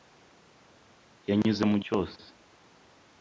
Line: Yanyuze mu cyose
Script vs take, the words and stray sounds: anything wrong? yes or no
no